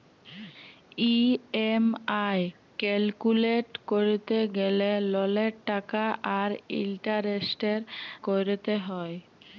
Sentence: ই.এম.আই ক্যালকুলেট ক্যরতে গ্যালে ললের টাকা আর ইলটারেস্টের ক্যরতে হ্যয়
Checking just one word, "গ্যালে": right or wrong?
right